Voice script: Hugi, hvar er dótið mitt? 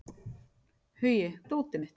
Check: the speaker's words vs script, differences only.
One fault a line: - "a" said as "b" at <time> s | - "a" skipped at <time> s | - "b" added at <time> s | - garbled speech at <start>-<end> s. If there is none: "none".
- "hvar" skipped at 1.3 s